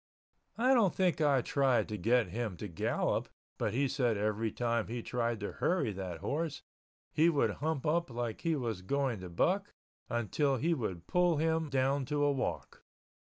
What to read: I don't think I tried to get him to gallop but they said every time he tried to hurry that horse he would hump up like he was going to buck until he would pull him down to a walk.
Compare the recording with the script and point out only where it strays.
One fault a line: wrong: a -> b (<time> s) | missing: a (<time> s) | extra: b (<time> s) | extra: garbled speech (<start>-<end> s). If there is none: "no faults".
wrong: they -> he (3.7 s)